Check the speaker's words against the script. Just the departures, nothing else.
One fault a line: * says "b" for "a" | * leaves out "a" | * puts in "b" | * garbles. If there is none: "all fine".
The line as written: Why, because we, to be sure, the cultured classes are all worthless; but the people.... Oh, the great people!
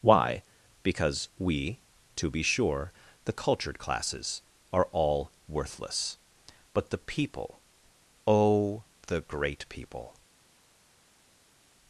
all fine